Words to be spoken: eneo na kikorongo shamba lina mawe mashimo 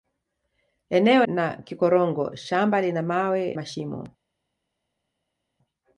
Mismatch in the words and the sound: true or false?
false